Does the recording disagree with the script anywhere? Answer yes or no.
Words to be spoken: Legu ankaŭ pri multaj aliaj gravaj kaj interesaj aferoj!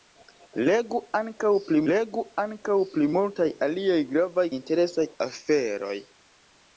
yes